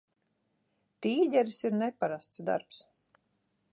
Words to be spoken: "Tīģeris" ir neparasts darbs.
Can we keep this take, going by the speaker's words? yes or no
yes